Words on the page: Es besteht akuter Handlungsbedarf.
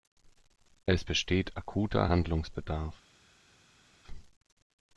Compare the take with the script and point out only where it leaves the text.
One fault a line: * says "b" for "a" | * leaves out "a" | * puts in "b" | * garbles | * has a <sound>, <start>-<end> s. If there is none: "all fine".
all fine